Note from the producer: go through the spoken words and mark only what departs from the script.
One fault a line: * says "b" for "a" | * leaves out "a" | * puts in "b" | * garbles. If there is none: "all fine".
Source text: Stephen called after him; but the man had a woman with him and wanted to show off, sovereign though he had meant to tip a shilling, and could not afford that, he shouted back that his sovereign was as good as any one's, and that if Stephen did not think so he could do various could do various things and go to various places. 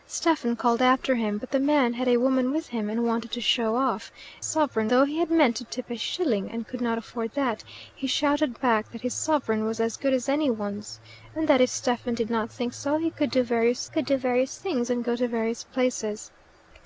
all fine